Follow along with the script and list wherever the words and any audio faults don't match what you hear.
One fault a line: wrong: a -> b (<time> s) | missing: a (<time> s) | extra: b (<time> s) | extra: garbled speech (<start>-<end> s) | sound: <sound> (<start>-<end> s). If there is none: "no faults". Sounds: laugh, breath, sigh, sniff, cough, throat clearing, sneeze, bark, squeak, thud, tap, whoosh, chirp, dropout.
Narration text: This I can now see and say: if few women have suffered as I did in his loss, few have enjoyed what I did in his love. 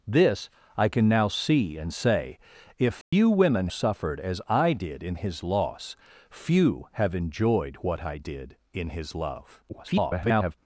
sound: dropout (3.0-3.1 s)
missing: have (3.7 s)
extra: garbled speech (9.7-10.5 s)